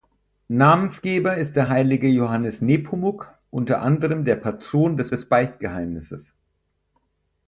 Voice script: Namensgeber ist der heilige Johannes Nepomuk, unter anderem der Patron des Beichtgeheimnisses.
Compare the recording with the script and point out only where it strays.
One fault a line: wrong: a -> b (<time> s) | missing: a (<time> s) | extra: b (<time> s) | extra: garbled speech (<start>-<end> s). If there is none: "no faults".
extra: des (5.1 s)